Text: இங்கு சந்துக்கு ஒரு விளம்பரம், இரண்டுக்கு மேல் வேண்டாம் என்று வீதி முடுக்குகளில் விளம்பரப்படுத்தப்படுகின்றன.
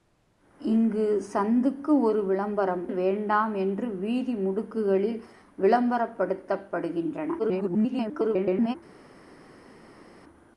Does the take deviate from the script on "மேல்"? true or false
true